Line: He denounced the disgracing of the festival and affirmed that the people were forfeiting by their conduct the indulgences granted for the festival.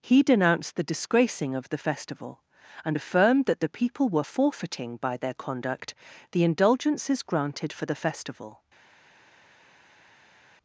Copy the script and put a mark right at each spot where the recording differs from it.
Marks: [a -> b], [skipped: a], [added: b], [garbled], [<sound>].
He denounced the disgracing of the festival and affirmed that the people were forfeiting by their conduct the indulgences granted for the festival.